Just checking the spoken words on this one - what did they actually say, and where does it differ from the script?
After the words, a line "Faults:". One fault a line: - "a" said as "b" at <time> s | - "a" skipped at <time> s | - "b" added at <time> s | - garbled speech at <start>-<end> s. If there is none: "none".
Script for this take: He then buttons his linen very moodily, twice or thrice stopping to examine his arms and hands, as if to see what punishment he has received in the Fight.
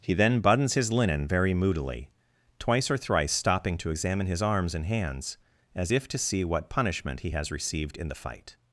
He then buttons his linen very moodily, twice or thrice stopping to examine his arms and hands, as if to see what punishment he has received in the Fight.
Faults:
none